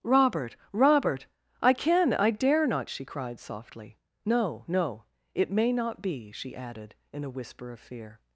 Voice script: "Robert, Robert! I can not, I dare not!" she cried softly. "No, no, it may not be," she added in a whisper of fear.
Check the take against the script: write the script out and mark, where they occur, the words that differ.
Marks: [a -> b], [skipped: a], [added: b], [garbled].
"Robert, Robert! I can [skipped: not,] I dare not!" she cried softly. "No, no, it may not be," she added in a whisper of fear.